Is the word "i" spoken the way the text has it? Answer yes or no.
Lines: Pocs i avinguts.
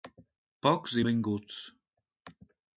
yes